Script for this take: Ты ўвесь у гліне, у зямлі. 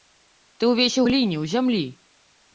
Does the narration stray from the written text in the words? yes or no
no